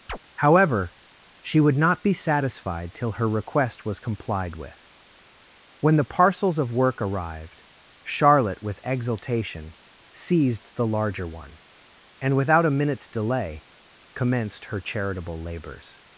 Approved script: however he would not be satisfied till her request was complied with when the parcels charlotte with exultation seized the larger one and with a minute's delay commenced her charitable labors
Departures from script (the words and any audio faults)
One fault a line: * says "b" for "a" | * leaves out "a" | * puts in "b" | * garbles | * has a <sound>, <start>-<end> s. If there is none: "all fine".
* has a chirp, 0.1-0.2 s
* says "she" for "he"
* puts in "of work arrived"
* says "without" for "with"